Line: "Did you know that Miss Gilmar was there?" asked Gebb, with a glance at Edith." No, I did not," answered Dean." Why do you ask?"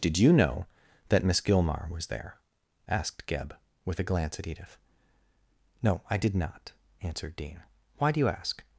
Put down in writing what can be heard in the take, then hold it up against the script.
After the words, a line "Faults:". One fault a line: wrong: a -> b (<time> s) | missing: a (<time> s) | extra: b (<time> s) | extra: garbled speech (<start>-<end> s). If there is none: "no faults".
"Did you know that Miss Gilmar was there?" asked Gebb, with a glance at Edith." No, I did not," answered Dean." Why do you ask?"
Faults:
no faults